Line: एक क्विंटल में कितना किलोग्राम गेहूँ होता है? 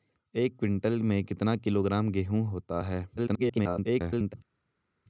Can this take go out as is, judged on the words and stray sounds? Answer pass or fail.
fail